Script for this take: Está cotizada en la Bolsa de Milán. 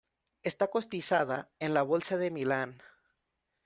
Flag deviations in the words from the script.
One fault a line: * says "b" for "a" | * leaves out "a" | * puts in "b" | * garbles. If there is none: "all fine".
all fine